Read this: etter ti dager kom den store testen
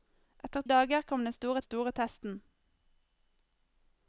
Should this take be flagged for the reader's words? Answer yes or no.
yes